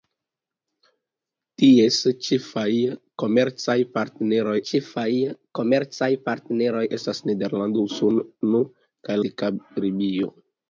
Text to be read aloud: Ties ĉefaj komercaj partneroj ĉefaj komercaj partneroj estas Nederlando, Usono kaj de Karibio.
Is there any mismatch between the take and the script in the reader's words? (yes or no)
no